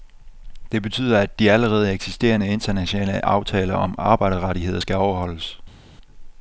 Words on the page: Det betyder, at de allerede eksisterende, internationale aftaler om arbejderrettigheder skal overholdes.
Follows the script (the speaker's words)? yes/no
yes